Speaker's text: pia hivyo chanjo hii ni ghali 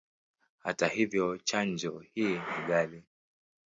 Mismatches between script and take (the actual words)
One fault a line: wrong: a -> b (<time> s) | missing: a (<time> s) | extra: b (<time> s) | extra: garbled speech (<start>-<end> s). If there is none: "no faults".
wrong: pia -> hata (0.6 s)